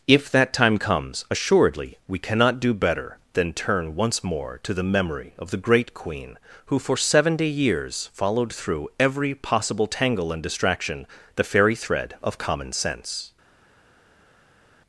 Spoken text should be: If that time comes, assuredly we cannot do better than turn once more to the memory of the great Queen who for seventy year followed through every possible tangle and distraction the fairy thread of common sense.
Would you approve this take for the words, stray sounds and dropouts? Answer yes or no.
no